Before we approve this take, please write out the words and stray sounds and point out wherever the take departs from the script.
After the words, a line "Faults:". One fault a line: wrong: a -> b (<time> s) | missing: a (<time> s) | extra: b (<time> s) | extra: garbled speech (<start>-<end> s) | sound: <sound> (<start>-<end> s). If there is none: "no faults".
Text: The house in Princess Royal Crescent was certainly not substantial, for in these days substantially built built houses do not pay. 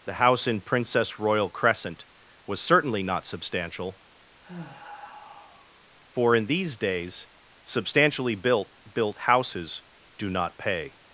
The house in Princess Royal Crescent was certainly not substantial, for in these days substantially built built houses do not pay.
Faults:
sound: sigh (4.4-5.8 s)